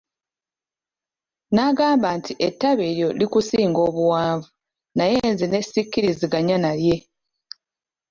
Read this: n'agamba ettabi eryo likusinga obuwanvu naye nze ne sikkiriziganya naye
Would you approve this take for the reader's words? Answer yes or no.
no